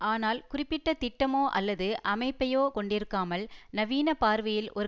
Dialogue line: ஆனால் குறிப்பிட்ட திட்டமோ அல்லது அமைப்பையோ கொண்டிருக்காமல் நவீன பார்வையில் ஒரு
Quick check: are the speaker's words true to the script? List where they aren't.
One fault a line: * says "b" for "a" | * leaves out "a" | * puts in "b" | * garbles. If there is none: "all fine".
all fine